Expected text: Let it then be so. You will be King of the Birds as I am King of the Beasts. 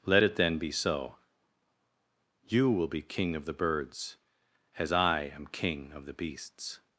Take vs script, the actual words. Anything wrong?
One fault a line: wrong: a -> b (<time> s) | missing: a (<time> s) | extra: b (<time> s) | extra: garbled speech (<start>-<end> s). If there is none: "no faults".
no faults